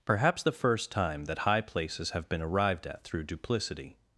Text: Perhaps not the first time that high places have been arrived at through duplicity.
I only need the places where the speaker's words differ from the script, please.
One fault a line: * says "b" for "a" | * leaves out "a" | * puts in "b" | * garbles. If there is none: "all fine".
* leaves out "not"